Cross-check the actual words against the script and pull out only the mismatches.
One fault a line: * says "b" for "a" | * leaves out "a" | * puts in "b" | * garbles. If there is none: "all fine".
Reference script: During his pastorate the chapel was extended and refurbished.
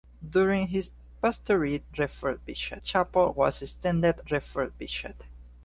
* says "refurbished" for "the"
* leaves out "and"